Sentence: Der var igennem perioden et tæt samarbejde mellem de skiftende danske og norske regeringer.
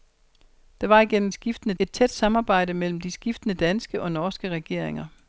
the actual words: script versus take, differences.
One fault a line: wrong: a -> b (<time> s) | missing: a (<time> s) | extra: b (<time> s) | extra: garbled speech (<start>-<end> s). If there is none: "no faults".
wrong: perioden -> skiftende (1.3 s)